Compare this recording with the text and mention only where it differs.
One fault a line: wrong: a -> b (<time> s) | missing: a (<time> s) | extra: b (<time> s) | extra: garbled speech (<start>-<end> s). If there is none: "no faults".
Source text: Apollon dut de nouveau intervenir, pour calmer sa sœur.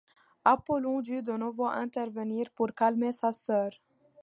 no faults